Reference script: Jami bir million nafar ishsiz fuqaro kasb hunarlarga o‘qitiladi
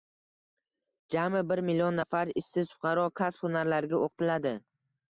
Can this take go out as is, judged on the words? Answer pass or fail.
pass